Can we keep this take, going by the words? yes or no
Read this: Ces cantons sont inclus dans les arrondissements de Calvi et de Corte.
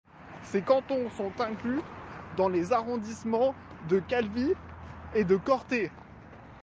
yes